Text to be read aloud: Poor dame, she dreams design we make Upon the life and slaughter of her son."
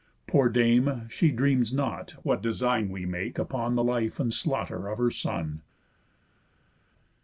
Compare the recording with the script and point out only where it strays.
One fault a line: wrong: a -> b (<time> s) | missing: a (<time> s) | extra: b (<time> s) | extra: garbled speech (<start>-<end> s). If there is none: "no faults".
extra: not what (1.7 s)